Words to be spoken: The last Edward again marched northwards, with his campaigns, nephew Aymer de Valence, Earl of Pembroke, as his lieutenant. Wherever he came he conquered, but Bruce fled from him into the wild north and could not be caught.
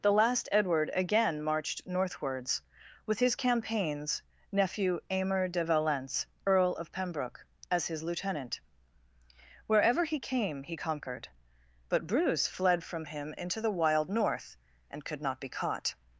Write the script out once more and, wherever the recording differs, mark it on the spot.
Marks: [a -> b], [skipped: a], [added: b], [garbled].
The last Edward again marched northwards, with his campaigns, nephew Aymer de Valence, Earl of Pembroke, as his lieutenant. Wherever he came he conquered, but Bruce fled from him into the wild north and could not be caught.